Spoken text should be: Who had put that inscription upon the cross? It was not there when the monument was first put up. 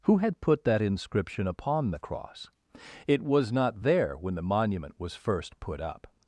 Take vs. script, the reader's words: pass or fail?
pass